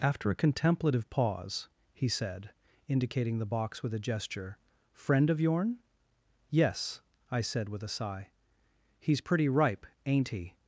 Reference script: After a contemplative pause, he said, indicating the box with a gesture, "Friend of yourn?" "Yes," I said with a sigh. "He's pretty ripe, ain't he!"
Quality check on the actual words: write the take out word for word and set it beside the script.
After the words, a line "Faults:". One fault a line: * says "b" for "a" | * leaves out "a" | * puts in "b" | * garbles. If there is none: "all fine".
After a contemplative pause, he said, indicating the box with a gesture, "Friend of yourn?" "Yes," I said with a sigh. "He's pretty ripe, ain't he!"
Faults:
all fine